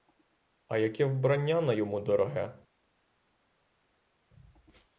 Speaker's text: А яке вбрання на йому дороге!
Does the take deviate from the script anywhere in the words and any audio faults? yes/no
no